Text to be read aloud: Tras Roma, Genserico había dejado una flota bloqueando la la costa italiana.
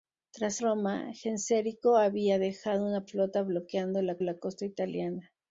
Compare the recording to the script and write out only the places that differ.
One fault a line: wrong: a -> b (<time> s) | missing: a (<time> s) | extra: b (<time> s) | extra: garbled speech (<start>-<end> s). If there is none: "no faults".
no faults